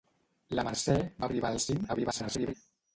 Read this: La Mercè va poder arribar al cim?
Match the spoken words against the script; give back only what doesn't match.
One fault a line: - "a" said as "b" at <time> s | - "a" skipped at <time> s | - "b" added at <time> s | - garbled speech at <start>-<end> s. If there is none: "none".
- "poder" skipped at 1.3 s
- garbled speech at 1.9-2.5 s